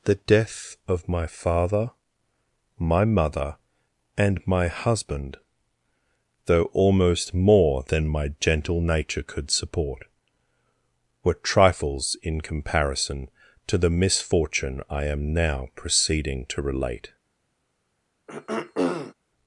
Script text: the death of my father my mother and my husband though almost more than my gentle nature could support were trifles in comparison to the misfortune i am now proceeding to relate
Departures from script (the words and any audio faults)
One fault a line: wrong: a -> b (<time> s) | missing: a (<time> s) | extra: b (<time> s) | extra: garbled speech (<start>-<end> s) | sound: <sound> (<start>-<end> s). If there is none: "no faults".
sound: throat clearing (18.3-19.1 s)